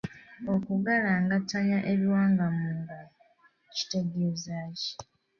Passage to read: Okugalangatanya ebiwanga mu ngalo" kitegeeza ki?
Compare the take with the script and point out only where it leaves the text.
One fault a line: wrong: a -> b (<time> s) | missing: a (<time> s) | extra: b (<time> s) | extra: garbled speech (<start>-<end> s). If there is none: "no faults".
no faults